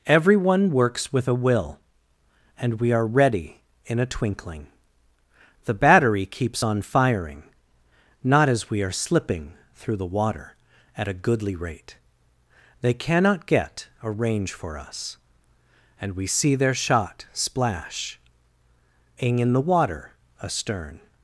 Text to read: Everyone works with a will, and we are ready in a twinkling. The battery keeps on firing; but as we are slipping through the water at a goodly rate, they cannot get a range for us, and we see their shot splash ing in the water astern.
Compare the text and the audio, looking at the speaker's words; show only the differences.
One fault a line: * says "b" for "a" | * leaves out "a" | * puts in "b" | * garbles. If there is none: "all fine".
* says "not" for "but"